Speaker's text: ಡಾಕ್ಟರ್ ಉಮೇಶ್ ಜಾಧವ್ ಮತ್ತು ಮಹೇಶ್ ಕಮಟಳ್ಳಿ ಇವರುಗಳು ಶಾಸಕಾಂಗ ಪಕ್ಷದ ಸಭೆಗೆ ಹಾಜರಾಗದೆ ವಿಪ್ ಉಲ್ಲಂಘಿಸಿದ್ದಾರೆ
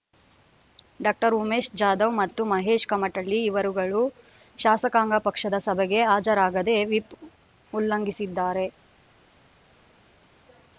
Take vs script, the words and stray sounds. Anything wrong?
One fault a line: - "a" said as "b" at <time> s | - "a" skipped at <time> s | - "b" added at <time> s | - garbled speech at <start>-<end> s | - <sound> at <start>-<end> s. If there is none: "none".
none